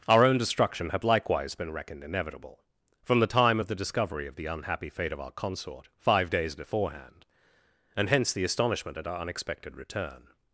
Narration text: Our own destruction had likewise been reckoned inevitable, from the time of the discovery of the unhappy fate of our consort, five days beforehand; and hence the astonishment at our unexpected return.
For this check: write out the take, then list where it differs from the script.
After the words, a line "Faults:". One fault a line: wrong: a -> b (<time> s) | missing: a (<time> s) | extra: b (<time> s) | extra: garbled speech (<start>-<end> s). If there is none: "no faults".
Our own destruction had likewise been reckoned inevitable, from the time of the discovery of the unhappy fate of our consort, five days beforehand; and hence the astonishment at our unexpected return.
Faults:
no faults